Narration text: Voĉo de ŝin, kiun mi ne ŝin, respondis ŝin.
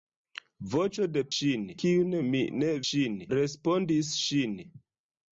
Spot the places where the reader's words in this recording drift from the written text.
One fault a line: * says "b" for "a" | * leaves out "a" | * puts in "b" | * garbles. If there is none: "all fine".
all fine